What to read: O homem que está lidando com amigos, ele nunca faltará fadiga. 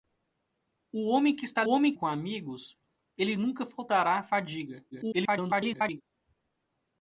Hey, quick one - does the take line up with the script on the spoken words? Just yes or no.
no